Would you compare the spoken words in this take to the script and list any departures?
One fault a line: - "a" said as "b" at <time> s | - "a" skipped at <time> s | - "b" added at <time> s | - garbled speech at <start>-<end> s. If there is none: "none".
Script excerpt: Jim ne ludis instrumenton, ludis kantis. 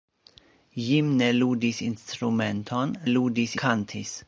none